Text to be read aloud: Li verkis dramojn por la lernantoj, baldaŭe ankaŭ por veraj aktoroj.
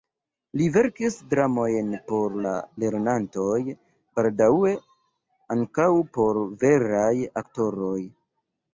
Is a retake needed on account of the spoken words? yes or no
no